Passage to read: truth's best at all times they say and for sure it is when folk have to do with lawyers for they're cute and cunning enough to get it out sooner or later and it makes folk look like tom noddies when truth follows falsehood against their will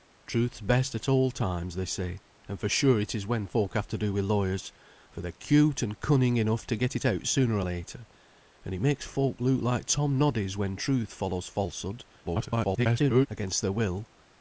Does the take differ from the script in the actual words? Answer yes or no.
yes